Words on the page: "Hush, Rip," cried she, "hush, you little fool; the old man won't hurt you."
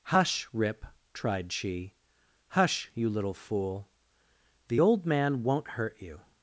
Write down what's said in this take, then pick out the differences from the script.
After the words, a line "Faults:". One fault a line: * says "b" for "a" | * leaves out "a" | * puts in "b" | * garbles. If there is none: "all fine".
"Hush, Rip," tried she, "hush, you little fool; the old man won't hurt you."
Faults:
* says "tried" for "cried"